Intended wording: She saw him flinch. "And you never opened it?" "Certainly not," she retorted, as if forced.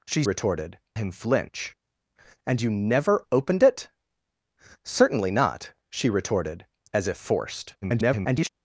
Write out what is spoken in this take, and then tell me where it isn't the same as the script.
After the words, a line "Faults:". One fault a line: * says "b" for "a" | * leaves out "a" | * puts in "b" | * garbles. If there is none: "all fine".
She retorted him flinch. "And you never opened it?" "Certainly not," she retorted, as if forced. [garbled]
Faults:
* says "retorted" for "saw"
* garbles